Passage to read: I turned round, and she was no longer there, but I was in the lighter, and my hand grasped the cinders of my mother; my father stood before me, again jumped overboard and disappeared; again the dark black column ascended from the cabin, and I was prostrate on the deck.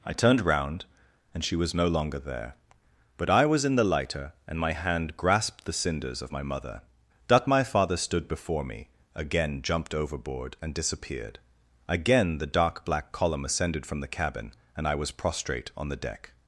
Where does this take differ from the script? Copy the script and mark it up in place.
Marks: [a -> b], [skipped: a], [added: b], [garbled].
I turned round, and she was no longer there, but I was in the lighter, and my hand grasped the cinders of my mother; [added: that] my father stood before me, again jumped overboard and disappeared; again the dark black column ascended from the cabin, and I was prostrate on the deck.